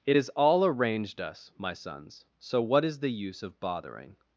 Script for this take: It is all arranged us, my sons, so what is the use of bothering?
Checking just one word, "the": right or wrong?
right